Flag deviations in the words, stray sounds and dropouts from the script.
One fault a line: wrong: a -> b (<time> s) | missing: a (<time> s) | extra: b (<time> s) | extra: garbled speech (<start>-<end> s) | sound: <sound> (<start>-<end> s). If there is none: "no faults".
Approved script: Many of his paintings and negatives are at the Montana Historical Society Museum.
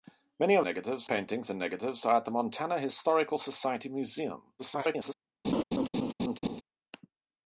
wrong: his -> negatives (0.6 s)
extra: garbled speech (4.6-5.1 s)
sound: laugh (5.4-6.6 s)